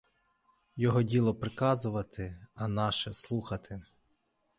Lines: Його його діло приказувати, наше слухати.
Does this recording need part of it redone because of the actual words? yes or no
yes